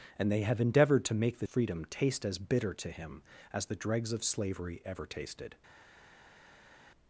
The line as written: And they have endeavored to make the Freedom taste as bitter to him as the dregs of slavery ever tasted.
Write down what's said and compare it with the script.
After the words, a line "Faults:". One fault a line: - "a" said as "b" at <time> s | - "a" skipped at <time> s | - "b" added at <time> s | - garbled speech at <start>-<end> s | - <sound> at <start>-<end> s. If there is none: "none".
And they have endeavored to make the Freedom taste as bitter to him as the dregs of slavery ever tasted.
Faults:
none